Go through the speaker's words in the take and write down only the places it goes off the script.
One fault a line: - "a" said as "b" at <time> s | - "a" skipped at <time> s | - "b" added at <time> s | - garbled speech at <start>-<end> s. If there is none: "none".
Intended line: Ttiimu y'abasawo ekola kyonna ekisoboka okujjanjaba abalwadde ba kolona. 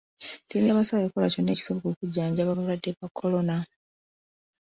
none